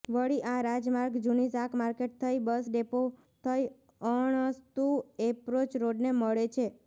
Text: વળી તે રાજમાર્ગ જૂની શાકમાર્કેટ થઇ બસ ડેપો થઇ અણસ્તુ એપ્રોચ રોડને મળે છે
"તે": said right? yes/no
no